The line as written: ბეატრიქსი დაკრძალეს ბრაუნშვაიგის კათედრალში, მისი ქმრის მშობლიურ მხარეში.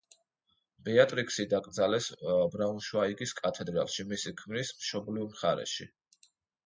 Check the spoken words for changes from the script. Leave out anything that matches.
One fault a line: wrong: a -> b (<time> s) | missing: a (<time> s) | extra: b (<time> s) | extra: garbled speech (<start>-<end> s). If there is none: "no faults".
no faults